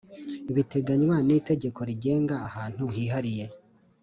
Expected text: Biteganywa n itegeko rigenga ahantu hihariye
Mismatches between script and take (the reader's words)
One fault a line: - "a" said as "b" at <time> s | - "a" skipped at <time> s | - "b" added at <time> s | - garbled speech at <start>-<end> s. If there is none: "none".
none